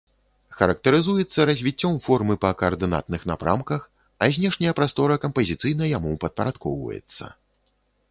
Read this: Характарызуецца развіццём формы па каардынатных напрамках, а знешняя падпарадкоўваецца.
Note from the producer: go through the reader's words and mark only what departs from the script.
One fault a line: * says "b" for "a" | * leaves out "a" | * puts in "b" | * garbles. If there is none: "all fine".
* puts in "прастора кампазіцыйна яму"